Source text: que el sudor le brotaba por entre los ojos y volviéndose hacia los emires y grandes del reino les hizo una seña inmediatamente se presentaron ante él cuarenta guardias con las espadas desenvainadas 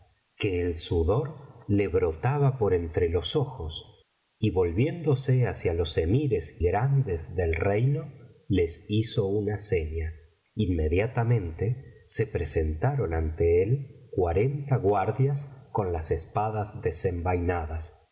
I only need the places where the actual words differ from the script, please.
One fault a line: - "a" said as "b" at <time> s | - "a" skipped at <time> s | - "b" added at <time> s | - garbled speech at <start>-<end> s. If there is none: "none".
- "y" skipped at 6.6 s